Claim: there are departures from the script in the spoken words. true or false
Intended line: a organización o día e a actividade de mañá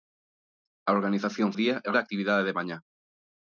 false